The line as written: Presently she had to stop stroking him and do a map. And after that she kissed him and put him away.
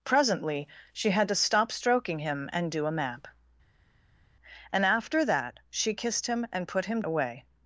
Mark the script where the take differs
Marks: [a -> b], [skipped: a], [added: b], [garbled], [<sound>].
Presently she had to stop stroking him and do a map. And after that she kissed him and put him away.